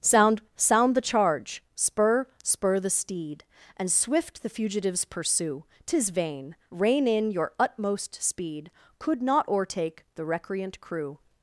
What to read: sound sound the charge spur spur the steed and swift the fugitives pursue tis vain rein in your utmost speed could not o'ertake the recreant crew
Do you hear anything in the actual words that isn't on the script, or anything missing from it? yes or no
no